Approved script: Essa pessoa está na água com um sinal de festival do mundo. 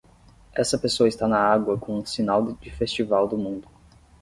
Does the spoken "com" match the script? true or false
true